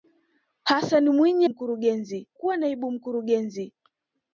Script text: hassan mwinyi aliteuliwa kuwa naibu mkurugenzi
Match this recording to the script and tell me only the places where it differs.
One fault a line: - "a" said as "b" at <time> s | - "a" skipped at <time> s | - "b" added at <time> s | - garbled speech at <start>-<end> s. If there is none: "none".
- "aliteuliwa" said as "mkurugenzi" at 1.5 s